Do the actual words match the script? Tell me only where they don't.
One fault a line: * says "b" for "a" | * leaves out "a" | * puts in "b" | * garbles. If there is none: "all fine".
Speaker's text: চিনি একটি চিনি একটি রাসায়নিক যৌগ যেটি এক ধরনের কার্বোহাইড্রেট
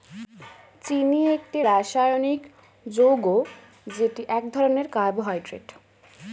* leaves out "চিনি একটি"